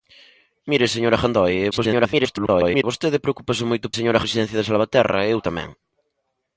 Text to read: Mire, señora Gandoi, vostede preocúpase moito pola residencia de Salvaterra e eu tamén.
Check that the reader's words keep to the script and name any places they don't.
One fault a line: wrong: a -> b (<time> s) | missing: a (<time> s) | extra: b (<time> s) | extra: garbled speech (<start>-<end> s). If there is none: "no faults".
extra: garbled speech (1.7-2.8 s)
wrong: pola -> señora (4.0 s)